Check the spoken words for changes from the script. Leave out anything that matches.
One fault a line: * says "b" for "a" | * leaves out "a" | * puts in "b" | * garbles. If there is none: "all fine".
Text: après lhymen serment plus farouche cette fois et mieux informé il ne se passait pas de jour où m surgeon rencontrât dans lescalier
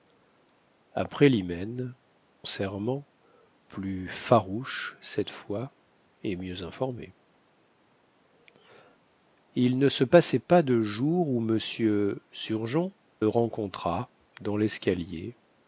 all fine